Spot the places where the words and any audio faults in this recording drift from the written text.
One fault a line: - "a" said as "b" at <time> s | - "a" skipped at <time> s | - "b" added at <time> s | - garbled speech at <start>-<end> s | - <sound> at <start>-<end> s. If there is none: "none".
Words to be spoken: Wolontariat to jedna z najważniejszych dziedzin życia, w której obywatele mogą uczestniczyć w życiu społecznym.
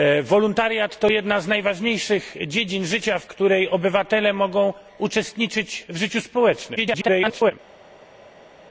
- garbled speech at 6.8-7.5 s